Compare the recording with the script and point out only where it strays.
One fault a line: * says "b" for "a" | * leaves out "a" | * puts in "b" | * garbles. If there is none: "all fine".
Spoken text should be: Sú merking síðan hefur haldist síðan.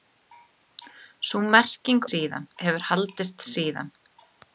all fine